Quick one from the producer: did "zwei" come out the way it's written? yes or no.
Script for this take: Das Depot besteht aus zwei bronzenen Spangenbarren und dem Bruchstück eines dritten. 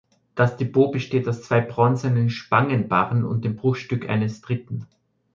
yes